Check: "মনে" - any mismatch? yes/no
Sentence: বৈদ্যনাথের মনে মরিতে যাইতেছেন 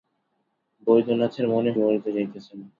no